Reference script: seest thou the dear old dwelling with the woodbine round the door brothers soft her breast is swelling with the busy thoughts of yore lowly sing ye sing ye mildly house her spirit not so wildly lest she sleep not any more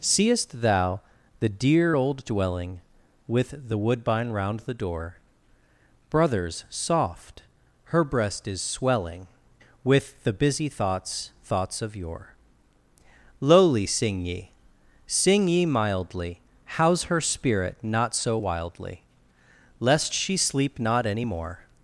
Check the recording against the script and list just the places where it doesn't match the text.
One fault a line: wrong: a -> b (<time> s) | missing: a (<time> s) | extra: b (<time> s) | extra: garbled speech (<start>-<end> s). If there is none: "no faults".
extra: thoughts (11.4 s)